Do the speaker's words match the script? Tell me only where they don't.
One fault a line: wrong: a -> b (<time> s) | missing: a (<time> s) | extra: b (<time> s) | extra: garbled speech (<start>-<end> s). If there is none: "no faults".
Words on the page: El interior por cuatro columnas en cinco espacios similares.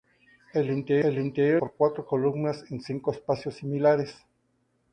no faults